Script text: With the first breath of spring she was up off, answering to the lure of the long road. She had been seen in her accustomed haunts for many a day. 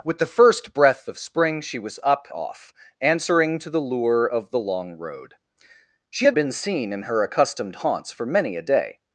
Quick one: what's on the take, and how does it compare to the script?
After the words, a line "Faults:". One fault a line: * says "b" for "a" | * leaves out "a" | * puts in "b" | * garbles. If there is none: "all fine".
With the first breath of spring she was up off, answering to the lure of the long road. She had been seen in her accustomed haunts for many a day.
Faults:
all fine